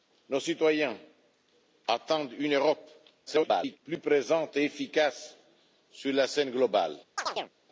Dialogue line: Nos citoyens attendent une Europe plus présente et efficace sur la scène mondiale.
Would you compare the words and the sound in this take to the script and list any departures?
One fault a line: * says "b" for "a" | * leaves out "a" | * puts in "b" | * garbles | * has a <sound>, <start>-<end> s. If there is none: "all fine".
* garbles
* has a chirp, 7.2-7.5 s